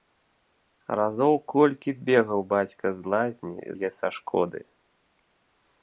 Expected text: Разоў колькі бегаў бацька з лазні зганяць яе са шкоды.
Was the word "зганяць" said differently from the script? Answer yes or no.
yes